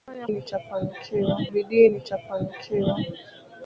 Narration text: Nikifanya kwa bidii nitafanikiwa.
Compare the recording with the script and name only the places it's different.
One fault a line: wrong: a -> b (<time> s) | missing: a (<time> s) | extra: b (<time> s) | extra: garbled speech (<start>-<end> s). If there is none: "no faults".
wrong: kwa -> nitafanikiwa (0.3 s)